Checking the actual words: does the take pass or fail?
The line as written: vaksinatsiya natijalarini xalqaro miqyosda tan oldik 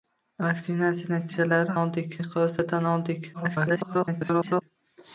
fail